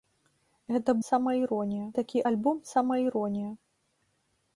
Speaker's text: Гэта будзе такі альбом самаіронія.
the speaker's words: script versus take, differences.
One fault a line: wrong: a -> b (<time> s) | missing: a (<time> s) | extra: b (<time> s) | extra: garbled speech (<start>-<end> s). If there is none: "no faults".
wrong: будзе -> самаіронія (1.1 s)